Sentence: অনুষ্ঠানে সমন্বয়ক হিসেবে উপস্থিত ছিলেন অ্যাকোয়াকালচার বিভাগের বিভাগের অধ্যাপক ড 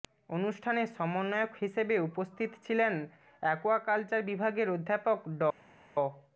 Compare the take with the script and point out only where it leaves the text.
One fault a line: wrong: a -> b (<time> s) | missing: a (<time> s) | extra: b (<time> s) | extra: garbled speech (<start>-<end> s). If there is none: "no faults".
missing: বিভাগের (4.7 s)